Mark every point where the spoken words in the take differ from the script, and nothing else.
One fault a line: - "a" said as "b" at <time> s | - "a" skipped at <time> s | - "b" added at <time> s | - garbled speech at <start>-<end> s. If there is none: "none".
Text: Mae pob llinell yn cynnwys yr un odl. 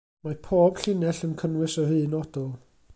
none